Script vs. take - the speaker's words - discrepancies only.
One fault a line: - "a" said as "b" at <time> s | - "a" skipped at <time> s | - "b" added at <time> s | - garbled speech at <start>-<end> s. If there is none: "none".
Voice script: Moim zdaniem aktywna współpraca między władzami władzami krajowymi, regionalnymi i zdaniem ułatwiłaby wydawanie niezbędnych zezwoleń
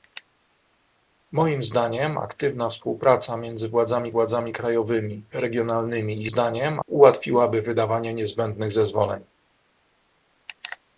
none